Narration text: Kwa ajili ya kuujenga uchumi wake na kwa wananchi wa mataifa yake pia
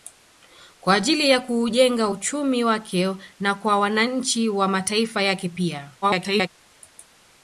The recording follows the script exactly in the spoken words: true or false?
false